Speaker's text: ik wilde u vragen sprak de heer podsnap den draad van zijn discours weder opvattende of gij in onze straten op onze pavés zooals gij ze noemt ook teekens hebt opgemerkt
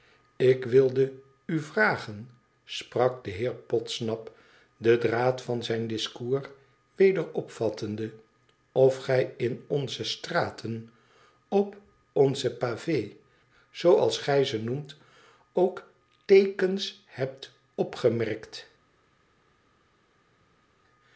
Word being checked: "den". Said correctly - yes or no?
yes